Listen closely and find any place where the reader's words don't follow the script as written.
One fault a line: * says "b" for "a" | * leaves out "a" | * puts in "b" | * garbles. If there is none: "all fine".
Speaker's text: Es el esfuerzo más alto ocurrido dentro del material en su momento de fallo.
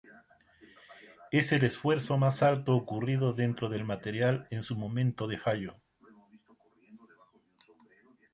all fine